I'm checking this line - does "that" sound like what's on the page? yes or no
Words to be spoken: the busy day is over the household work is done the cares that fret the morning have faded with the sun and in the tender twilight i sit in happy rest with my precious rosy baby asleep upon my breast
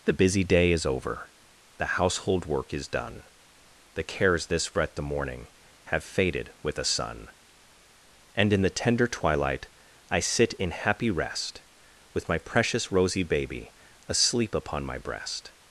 no